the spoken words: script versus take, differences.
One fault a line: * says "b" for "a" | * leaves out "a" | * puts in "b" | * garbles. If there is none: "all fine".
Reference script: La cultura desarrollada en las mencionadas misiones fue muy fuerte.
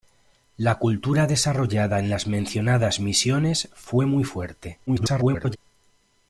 * garbles